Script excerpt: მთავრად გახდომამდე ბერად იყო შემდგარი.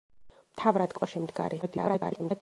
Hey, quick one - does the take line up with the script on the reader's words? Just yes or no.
no